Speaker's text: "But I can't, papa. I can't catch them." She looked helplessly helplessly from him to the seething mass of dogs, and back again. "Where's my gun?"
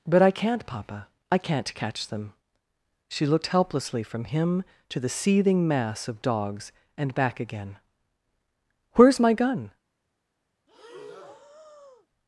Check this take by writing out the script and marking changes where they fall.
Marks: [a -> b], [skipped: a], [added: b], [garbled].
"But I can't, papa. I can't catch them." She looked helplessly [skipped: helplessly] from him to the seething mass of dogs, and back again. "Where's my gun?"